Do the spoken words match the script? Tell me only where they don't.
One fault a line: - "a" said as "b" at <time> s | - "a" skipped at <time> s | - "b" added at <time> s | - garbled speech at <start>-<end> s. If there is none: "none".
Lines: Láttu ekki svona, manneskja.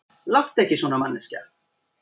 none